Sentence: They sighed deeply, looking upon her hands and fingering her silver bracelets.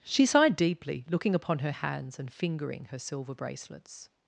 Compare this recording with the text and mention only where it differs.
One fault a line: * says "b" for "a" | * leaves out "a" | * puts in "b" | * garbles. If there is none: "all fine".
* says "She" for "They"